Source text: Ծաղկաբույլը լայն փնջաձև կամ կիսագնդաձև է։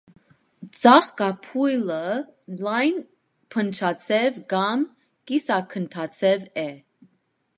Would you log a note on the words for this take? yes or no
no